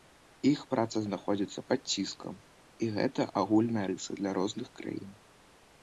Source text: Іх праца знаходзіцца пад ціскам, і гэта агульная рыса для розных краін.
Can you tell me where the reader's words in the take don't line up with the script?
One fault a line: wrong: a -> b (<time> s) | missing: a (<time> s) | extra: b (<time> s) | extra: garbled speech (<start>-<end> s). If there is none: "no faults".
no faults